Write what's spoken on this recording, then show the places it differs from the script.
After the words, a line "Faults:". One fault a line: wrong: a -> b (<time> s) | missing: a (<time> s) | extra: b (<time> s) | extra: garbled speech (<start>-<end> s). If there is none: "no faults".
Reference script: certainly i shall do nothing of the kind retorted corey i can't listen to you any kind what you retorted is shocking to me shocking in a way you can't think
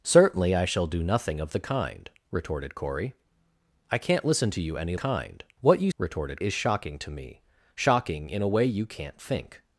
certainly i shall do nothing of the kind retorted corey i can't listen to you any kind what you retorted is shocking to me shocking in a way you can't think
Faults:
no faults